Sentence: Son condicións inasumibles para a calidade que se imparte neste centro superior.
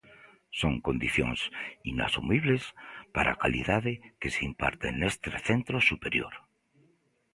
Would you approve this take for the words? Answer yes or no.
yes